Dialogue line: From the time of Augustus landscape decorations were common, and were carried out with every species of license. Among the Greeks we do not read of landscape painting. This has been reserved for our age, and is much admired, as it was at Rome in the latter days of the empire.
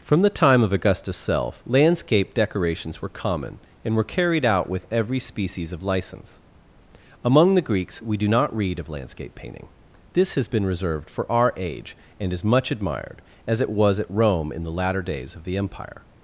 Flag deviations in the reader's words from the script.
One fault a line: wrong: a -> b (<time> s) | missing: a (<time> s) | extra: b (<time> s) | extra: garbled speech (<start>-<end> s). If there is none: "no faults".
extra: self (1.1 s)